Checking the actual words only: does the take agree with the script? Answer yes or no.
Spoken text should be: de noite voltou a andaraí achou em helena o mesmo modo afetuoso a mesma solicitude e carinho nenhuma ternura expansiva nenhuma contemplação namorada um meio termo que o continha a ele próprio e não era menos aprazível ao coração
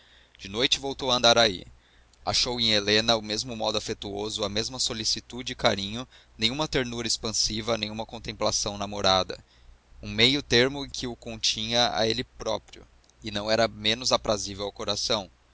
yes